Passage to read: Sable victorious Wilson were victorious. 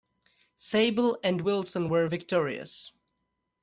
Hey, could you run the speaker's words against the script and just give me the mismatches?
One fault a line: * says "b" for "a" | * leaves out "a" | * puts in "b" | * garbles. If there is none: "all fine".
* says "and" for "victorious"